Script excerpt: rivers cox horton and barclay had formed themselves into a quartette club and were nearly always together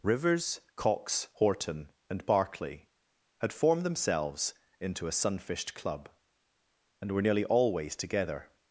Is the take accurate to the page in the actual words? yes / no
no